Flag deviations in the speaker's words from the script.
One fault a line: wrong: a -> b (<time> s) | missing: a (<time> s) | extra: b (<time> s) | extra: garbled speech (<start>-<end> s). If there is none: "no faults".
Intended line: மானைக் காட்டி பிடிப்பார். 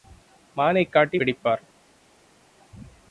no faults